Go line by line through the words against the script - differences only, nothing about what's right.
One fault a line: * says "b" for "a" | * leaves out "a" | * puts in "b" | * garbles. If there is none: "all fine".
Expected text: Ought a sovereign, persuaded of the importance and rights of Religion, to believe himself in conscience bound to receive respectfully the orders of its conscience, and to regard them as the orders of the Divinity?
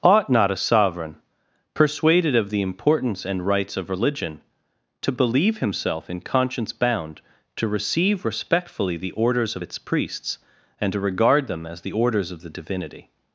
* puts in "not"
* says "priests" for "conscience"